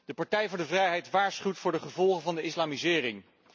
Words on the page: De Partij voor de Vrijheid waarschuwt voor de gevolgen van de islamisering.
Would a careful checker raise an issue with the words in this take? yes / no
no